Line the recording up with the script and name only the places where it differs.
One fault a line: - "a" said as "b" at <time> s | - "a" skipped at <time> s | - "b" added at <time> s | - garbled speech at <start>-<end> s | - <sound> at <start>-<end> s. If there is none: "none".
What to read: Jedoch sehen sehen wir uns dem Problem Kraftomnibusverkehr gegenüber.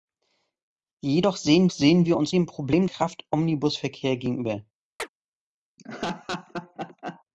- chirp at 5.0-5.1 s
- laugh at 5.8-7.2 s